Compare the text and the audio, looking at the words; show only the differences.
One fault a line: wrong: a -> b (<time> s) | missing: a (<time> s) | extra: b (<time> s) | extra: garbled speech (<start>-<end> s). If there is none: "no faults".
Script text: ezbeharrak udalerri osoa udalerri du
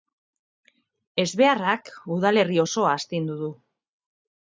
wrong: udalerri -> astindu (3.0 s)